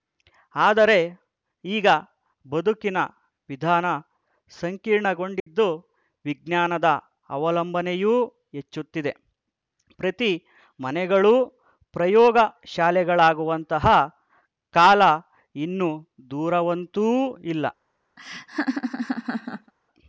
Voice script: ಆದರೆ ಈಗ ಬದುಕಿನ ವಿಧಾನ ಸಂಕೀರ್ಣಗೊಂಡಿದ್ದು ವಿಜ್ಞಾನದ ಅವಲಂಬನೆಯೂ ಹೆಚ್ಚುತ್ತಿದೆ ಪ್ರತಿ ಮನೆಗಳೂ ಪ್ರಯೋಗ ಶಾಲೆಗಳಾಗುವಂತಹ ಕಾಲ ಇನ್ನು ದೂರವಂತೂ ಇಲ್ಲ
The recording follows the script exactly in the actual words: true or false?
true